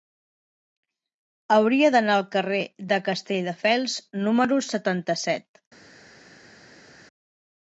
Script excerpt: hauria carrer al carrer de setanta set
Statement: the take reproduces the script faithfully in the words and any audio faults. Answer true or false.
false